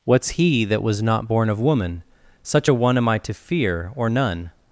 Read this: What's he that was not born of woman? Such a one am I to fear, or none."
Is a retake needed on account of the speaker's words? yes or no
no